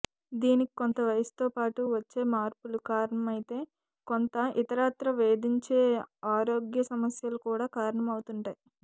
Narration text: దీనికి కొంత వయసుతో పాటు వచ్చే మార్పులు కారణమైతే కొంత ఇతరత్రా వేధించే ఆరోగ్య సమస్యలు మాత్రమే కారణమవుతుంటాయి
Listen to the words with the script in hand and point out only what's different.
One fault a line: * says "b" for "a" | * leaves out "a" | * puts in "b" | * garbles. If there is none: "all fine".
* says "కూడా" for "మాత్రమే"